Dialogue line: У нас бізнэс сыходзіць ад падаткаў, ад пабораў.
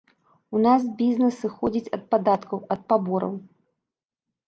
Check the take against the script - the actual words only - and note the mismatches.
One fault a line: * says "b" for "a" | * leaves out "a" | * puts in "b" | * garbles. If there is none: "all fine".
all fine